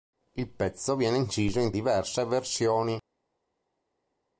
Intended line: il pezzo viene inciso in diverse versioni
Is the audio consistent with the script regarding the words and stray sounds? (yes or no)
yes